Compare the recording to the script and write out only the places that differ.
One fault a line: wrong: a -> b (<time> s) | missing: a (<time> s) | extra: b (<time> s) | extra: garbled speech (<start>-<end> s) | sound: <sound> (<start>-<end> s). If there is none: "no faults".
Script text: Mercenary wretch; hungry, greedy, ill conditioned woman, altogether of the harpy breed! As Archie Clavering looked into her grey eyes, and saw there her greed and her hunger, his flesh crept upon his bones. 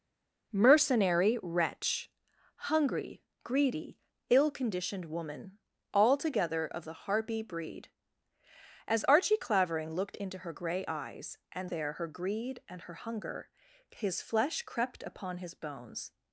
missing: saw (11.7 s)